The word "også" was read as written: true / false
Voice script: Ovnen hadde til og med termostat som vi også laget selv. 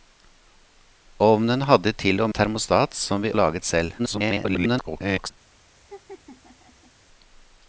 false